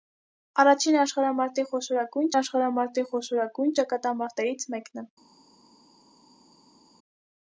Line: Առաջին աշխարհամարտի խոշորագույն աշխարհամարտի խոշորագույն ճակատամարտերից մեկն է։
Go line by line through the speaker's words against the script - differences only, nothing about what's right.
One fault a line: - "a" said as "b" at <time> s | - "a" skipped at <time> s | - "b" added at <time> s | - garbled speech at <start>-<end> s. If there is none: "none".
none